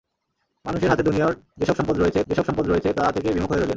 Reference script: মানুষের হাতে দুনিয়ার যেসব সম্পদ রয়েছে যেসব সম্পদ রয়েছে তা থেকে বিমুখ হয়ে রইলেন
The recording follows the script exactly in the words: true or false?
true